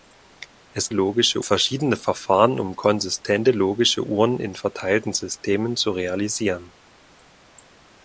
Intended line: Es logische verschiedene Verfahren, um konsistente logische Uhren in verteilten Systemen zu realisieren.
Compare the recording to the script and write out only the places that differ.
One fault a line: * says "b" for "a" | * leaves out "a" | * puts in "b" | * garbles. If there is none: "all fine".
all fine